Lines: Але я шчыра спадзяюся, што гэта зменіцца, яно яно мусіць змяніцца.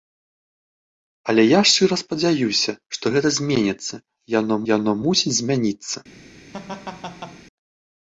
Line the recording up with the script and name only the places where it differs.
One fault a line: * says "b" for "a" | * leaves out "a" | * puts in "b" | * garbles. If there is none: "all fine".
all fine